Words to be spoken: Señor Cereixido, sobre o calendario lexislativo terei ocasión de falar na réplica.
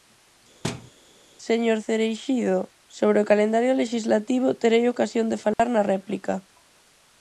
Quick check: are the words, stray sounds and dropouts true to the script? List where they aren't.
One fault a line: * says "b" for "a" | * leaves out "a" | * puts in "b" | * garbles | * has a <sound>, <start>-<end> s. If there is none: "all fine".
* has a thud, 0.6-0.9 s
* has a dropout, 5.5-5.6 s